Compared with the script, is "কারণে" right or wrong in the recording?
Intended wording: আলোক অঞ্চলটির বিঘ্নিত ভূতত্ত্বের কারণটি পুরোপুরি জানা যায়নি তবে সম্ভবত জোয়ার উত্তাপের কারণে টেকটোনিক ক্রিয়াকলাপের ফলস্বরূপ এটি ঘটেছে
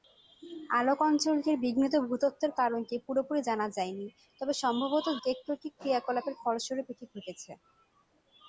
wrong